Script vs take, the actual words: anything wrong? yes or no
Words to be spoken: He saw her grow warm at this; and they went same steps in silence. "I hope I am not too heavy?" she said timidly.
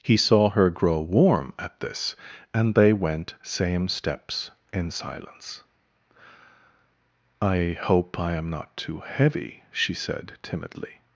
no